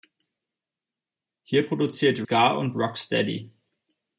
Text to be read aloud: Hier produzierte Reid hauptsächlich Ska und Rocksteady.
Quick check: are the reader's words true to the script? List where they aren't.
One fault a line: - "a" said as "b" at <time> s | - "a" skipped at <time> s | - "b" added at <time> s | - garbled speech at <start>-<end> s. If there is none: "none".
- "Reid hauptsächlich" skipped at 2.2 s